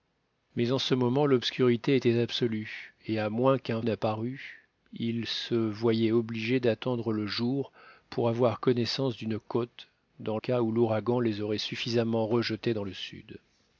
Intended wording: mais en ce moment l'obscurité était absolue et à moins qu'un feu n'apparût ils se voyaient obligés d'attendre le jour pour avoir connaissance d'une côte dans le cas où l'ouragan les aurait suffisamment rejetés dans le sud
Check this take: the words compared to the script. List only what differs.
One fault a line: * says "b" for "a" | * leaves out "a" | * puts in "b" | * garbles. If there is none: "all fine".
* leaves out "feu"
* leaves out "le"